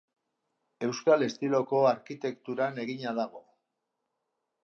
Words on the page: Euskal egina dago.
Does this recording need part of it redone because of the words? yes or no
yes